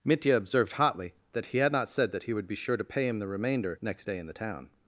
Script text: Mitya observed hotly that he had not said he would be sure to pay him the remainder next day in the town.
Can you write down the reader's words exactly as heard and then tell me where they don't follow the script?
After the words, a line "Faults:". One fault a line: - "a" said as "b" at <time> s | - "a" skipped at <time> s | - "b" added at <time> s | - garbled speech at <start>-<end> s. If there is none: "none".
Mitya observed hotly that he had not said that he would be sure to pay him the remainder next day in the town.
Faults:
- "that" added at 2.1 s